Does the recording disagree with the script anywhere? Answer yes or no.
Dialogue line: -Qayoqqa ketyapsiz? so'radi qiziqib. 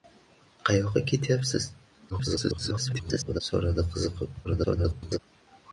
yes